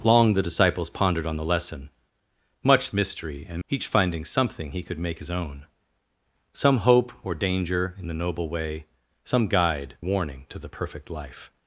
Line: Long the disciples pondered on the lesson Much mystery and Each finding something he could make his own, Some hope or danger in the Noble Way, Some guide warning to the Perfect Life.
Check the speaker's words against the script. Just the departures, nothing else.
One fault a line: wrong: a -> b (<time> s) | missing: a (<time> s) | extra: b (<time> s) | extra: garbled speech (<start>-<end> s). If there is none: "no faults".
no faults